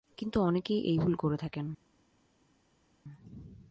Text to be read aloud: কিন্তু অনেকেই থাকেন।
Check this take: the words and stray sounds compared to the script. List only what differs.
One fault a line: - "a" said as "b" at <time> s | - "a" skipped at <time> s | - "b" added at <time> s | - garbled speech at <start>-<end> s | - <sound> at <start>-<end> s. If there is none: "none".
- "এই ভুল করে" added at 0.8 s